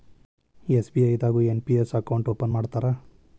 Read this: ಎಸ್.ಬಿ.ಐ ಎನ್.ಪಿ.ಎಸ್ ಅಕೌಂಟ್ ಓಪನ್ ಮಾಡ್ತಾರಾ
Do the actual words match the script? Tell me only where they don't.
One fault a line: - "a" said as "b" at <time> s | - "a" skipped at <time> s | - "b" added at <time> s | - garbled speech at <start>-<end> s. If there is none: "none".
- "ದಾಗು" added at 1.2 s